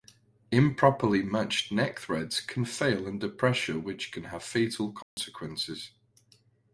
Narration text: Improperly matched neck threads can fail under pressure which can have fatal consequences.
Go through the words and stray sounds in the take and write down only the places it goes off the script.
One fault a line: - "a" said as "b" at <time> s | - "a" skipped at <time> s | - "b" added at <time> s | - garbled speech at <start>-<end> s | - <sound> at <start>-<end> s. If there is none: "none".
- dropout at 5.0-5.2 s